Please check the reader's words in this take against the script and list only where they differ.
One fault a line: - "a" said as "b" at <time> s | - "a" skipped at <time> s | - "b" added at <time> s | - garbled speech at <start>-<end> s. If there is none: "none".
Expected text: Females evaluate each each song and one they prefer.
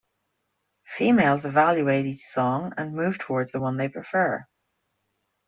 - "each" skipped at 2.2 s
- "move towards the" added at 3.0 s